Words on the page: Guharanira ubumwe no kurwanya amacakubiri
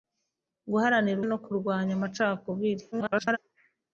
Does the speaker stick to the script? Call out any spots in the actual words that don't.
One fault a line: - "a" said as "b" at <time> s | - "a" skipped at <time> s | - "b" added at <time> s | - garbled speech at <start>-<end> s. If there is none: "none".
- "ubumwe" skipped at 1.2 s
- garbled speech at 2.9-3.4 s